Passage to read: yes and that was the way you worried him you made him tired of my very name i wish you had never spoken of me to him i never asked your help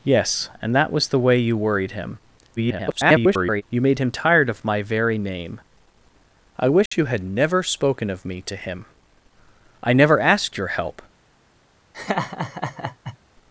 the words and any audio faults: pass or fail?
fail